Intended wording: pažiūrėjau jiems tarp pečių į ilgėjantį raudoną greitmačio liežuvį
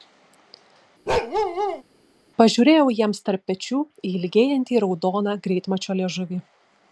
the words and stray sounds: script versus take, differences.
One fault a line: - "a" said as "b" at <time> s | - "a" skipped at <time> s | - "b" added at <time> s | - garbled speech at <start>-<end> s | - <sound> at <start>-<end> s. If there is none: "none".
- bark at 1.1-1.8 s